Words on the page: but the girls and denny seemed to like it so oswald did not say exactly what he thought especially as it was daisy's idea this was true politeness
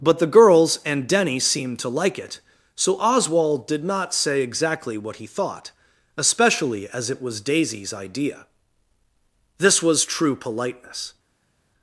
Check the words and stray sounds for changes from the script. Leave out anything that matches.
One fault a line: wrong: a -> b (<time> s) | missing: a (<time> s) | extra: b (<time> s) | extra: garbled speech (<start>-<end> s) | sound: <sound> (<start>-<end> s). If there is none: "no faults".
no faults